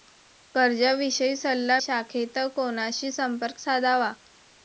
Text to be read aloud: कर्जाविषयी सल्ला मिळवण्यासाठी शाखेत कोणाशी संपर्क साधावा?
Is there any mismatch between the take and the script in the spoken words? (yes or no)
yes